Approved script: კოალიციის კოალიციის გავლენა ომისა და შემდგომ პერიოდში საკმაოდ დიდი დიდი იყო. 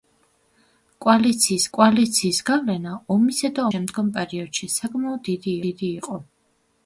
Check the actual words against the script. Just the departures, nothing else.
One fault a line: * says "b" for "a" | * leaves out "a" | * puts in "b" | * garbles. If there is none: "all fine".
all fine